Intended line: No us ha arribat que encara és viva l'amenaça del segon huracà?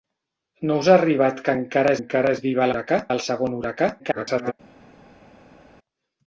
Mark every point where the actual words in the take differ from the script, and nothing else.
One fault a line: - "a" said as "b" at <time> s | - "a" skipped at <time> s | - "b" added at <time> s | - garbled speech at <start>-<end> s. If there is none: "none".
- "encara" added at 2.0 s
- "l'amenaça" said as "huracà" at 2.7 s
- garbled speech at 4.0-4.5 s